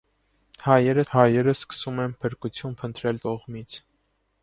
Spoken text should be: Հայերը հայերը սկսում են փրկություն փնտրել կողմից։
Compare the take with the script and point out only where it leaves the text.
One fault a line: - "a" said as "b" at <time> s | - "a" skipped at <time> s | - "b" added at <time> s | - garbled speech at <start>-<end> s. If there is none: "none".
none